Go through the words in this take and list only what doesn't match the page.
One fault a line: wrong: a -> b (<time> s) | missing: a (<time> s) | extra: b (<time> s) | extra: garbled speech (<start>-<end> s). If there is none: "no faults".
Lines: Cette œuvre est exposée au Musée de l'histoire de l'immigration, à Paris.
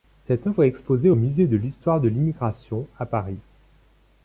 no faults